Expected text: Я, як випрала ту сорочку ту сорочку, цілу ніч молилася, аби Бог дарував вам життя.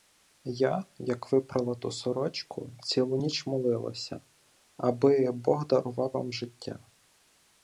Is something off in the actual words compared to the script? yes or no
yes